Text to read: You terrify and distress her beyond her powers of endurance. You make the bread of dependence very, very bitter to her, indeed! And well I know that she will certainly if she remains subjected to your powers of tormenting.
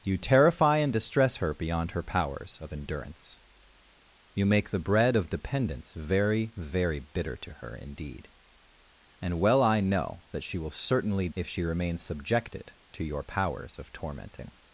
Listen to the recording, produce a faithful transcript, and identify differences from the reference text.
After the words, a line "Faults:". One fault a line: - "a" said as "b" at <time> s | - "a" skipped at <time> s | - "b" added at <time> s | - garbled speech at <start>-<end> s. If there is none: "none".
You terrify and distress her beyond her powers of endurance. You make the bread of dependence very, very bitter to her, indeed! And well I know that she will certainly if she remains subjected to your powers of tormenting.
Faults:
none